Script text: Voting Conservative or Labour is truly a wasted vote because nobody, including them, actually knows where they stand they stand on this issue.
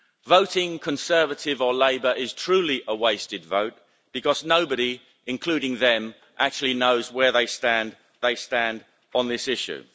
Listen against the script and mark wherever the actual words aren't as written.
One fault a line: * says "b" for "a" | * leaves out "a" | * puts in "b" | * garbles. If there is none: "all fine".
all fine